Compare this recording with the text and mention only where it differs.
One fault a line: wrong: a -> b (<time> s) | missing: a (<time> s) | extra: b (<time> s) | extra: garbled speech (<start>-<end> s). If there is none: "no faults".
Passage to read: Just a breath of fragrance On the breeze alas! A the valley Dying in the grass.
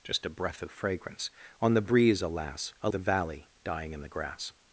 no faults